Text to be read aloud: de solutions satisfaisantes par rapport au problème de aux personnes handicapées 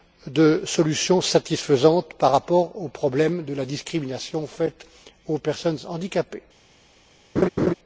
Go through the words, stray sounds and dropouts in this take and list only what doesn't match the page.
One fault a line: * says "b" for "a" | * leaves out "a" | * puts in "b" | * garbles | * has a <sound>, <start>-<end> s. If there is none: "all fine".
* puts in "la discrimination faite"
* has a laugh, 7.4-7.7 s